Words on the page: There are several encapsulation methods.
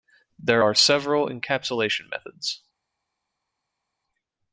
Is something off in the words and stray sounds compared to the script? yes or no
no